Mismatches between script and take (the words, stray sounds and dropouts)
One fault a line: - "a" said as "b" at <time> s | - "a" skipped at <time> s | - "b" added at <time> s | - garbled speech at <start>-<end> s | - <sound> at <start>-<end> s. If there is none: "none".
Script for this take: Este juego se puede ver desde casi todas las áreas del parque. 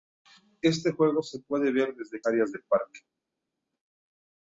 - "casi todas las" skipped at 2.2 s